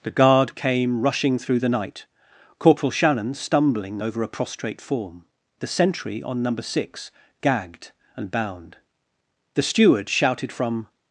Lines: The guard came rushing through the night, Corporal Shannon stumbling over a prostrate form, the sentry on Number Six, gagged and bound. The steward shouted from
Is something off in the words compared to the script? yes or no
no